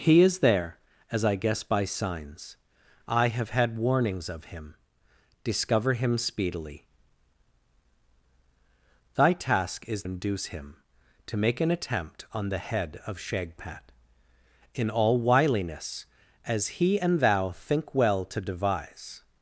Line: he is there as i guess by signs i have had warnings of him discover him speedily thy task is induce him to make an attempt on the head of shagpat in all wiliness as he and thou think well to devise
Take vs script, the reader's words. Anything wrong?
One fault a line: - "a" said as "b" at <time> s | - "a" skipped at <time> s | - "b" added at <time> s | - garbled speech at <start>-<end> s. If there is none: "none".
none